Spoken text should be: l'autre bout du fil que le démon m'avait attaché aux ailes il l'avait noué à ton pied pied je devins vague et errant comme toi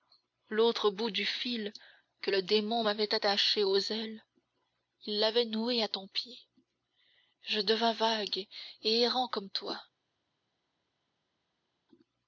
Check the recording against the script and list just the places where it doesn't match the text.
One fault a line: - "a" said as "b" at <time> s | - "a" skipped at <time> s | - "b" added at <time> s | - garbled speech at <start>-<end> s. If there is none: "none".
- "pied" skipped at 6.4 s